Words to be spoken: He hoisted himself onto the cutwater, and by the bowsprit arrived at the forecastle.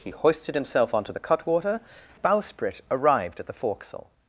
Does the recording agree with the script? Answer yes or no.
no